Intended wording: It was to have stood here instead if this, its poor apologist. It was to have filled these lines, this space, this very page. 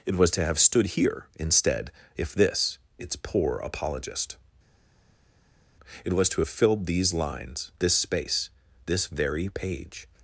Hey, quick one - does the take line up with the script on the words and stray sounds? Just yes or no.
yes